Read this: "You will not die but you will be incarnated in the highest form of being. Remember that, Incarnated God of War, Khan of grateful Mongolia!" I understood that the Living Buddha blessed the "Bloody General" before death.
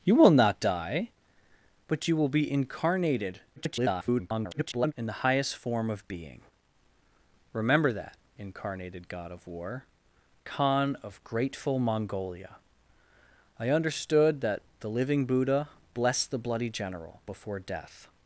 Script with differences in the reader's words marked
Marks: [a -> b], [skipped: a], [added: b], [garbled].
"You will not die but you will be incarnated [garbled] in the highest form of being. Remember that, Incarnated God of War, Khan of grateful Mongolia!" I understood that the Living Buddha blessed the "Bloody General" before death.